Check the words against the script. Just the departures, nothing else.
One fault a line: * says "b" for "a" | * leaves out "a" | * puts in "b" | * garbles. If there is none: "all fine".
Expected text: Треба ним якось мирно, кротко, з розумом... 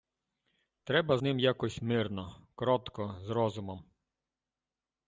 all fine